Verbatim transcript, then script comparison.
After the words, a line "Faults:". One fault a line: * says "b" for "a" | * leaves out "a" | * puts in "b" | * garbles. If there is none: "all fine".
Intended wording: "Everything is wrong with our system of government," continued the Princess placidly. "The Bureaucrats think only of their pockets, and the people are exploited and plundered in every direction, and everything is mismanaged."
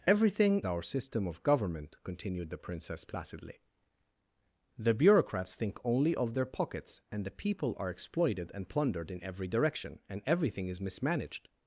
"Everything our system of government," continued the Princess placidly. "The Bureaucrats think only of their pockets, and the people are exploited and plundered in every direction, and everything is mismanaged."
Faults:
* leaves out "is wrong with"